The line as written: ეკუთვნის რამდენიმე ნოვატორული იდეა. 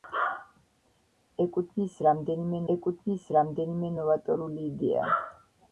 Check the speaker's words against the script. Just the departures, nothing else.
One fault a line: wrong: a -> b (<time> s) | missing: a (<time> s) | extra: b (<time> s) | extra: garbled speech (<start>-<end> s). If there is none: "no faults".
extra: ეკუთვნის რამდენიმე (2.7 s)